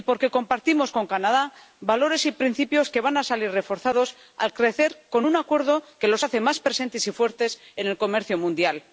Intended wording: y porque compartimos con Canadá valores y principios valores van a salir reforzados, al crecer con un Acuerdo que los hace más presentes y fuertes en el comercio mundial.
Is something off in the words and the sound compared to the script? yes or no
yes